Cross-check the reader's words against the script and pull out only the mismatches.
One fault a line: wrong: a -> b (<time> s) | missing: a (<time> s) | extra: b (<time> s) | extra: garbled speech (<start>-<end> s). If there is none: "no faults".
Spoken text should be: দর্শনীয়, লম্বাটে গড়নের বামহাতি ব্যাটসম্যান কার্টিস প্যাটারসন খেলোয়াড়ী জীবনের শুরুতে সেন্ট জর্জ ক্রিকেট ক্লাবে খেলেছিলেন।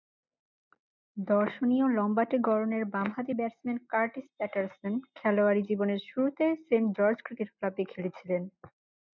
no faults